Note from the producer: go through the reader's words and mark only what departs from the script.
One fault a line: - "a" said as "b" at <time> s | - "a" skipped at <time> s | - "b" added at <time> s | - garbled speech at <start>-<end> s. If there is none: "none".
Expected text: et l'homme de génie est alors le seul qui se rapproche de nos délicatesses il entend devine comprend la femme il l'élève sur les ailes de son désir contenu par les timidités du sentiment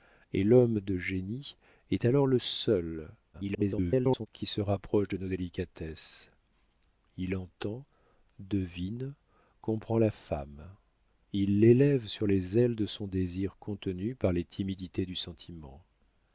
- garbled speech at 3.3-4.3 s